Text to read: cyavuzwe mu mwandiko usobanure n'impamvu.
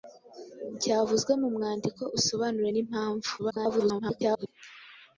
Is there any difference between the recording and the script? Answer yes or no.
yes